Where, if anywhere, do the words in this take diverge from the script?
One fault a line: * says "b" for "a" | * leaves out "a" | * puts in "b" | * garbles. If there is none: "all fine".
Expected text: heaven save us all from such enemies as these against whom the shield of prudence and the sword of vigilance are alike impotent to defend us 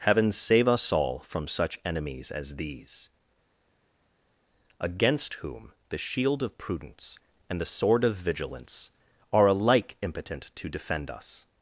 all fine